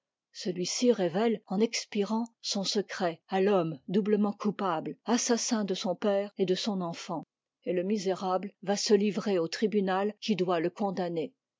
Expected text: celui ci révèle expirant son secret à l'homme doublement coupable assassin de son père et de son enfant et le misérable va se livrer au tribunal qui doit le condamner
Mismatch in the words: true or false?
true